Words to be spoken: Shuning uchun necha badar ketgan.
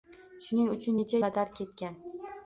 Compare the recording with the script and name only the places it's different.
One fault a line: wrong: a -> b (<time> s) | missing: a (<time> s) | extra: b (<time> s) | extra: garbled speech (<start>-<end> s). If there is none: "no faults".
no faults